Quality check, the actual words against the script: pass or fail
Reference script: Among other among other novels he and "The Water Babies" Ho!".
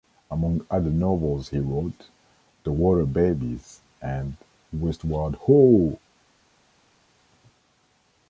fail